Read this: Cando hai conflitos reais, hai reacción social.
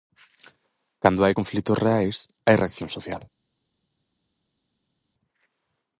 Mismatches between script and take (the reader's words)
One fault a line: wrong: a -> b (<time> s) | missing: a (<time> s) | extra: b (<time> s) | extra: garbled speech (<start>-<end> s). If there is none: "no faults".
no faults